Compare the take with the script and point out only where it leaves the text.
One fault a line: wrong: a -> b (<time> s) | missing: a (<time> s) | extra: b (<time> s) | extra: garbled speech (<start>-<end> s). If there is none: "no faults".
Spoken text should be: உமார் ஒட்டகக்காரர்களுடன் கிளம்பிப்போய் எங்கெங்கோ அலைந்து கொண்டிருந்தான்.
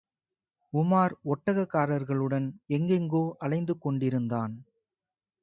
missing: கிளம்பிப்போய் (2.5 s)